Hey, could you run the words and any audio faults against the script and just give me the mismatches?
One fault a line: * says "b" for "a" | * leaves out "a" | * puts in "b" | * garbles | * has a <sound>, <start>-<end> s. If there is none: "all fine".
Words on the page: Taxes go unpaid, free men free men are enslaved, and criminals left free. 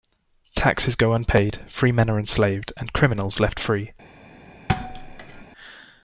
* leaves out "free men"
* has a thud, 4.7-5.4 s